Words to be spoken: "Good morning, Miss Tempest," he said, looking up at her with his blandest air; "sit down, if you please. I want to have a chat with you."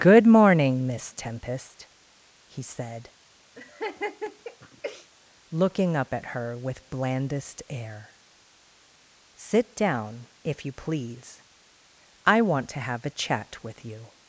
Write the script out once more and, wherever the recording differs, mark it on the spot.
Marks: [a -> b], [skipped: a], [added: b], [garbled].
"Good morning, Miss Tempest," he said, looking up at her with [skipped: his] blandest air; "sit down, if you please. I want to have a chat with you."